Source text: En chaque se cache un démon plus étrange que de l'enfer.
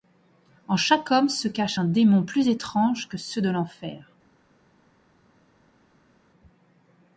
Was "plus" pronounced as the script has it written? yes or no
yes